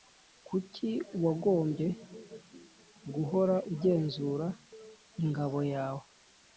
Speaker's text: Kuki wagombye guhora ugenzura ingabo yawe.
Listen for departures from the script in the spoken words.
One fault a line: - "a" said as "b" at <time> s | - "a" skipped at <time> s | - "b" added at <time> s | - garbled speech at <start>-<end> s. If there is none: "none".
none